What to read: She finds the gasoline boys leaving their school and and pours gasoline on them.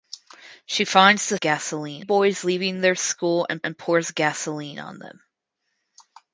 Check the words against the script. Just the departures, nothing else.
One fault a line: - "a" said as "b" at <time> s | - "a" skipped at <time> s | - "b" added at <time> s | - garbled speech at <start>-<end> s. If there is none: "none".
none